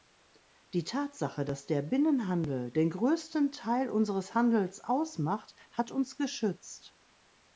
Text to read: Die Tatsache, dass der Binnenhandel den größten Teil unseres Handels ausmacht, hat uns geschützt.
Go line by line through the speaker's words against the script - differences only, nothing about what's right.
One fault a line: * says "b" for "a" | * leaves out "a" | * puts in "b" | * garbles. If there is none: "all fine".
all fine